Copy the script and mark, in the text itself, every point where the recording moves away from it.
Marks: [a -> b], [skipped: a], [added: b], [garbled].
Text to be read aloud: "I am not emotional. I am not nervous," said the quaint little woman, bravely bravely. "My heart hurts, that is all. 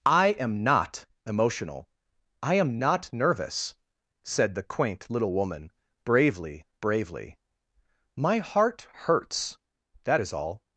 "I am not emotional. I am not nervous," said the quaint little woman, bravely bravely. "My heart hurts, that is all.